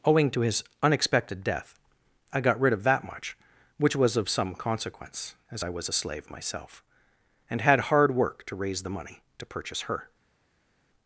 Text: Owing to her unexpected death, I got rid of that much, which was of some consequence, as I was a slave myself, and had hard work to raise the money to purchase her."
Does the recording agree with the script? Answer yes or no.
no